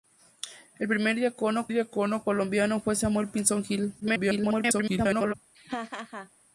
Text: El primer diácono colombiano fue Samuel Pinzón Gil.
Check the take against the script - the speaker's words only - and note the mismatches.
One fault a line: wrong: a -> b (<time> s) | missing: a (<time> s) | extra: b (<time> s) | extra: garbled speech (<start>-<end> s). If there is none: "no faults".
extra: diácono (1.7 s)
extra: garbled speech (4.0-5.3 s)